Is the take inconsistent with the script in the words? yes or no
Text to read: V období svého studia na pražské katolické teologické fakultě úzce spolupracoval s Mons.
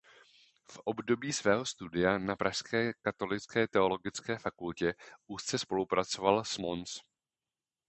no